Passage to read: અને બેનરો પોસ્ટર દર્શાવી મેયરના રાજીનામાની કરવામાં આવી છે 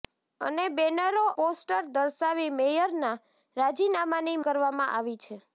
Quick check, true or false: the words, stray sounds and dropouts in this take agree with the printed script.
true